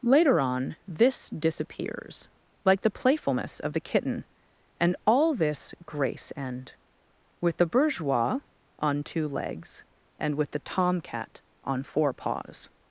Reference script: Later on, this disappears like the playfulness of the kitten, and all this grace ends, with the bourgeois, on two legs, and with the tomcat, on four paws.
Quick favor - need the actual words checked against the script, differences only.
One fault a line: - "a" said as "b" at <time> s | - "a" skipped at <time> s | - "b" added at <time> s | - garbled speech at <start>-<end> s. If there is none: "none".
- "ends" said as "end" at 6.3 s